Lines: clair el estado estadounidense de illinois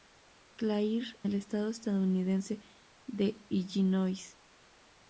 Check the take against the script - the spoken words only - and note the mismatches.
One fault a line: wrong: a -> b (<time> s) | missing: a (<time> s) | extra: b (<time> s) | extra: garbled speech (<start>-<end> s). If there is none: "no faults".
no faults